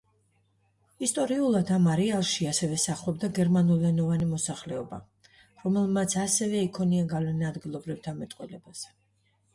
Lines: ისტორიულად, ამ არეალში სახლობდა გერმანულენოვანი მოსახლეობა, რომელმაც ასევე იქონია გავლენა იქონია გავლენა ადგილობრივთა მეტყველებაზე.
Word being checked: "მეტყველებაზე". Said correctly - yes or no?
yes